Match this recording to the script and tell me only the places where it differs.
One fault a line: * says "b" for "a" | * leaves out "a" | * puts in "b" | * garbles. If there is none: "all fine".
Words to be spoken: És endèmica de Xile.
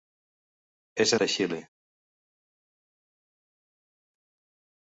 * leaves out "endèmica"